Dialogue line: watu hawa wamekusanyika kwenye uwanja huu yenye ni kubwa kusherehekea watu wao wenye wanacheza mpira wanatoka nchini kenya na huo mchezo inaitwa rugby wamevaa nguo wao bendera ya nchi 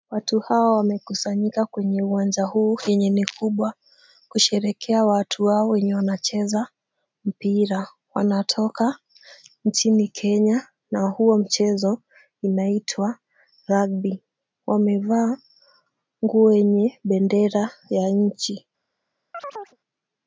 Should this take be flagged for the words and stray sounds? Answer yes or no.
yes